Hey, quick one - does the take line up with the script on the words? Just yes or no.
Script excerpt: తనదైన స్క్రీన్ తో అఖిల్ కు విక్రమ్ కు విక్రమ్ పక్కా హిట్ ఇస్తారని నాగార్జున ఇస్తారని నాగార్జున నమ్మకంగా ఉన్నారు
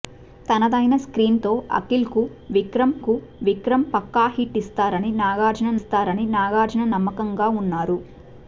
yes